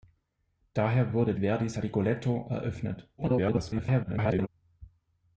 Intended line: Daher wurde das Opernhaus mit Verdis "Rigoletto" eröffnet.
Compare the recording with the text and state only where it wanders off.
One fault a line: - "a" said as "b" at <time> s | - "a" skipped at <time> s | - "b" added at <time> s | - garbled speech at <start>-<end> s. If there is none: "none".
- "das Opernhaus mit" skipped at 1.4 s
- garbled speech at 3.2-4.5 s